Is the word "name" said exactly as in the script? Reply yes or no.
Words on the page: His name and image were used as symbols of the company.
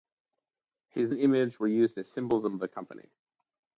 no